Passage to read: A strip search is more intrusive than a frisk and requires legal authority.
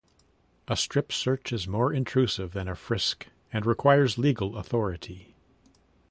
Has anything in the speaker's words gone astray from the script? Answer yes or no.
no